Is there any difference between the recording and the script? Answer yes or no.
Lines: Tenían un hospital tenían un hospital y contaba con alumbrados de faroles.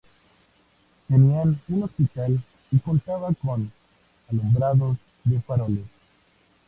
yes